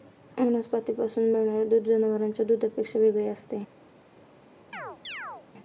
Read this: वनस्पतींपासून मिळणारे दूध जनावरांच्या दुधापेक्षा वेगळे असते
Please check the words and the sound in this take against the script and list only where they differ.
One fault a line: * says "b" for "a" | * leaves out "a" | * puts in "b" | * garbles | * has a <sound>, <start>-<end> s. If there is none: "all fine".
* has a chirp, 4.7-5.5 s